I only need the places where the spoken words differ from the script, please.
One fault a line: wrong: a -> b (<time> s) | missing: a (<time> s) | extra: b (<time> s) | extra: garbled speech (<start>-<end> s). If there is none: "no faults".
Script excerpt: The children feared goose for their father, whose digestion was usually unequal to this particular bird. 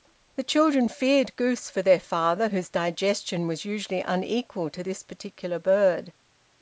no faults